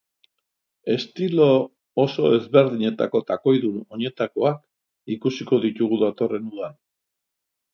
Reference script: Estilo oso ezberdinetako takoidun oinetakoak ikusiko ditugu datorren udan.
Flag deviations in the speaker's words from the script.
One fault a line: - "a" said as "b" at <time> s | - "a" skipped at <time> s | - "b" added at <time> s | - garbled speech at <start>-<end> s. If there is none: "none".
none